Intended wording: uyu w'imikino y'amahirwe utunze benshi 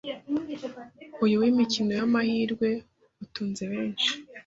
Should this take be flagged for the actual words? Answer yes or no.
no